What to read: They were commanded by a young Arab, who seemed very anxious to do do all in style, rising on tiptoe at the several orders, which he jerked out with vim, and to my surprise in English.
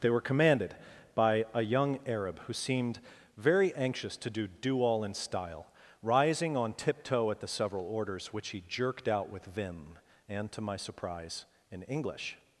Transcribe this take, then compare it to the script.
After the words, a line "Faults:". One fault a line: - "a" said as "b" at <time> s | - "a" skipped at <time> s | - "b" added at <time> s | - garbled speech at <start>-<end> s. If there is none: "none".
They were commanded by a young Arab, who seemed very anxious to do do all in style, rising on tiptoe at the several orders, which he jerked out with vim, and to my surprise in English.
Faults:
none